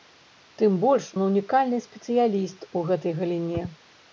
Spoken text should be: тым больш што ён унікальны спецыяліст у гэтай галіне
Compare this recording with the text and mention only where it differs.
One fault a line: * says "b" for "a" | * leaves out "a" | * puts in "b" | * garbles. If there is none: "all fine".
* leaves out "што"